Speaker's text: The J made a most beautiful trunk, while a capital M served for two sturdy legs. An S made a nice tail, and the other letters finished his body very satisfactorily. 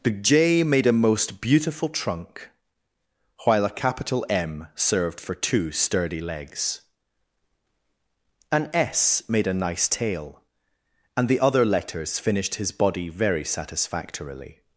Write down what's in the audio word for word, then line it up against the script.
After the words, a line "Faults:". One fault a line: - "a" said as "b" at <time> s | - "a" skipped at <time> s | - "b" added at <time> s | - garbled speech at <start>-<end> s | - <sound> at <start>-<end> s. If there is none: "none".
The J made a most beautiful trunk, while a capital M served for two sturdy legs. An S made a nice tail, and the other letters finished his body very satisfactorily.
Faults:
none